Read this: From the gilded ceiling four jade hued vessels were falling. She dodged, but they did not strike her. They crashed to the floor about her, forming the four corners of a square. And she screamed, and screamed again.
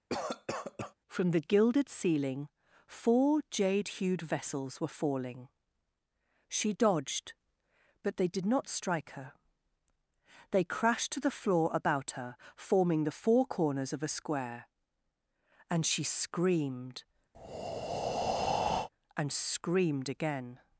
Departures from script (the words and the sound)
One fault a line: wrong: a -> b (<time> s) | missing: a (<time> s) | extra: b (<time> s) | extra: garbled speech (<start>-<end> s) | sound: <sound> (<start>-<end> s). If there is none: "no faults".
sound: cough (0.1-0.9 s)
sound: breath (17.3-18.9 s)